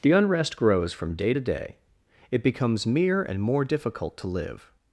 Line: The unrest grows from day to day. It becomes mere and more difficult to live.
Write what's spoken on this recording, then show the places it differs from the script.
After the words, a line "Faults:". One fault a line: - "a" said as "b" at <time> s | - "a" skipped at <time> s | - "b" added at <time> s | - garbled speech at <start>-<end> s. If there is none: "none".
The unrest grows from day to day. It becomes mere and more difficult to live.
Faults:
none